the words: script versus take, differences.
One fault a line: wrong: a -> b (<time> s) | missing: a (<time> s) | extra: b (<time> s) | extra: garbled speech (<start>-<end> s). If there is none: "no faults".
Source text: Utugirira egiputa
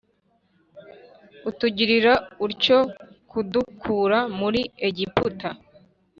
extra: utyo kudukura muri (2.5 s)